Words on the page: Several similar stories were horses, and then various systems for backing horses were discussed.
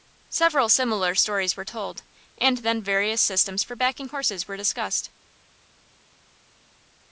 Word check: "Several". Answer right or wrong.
right